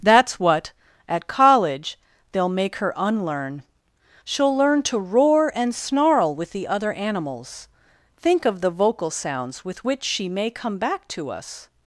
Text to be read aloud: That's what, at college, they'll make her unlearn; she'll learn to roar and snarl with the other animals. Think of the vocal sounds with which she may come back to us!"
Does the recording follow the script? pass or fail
pass